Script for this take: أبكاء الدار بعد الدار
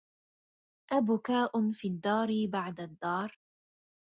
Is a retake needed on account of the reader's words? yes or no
yes